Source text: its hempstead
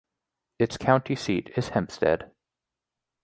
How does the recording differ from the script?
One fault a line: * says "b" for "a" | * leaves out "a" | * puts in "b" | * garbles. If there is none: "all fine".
* puts in "county seat is"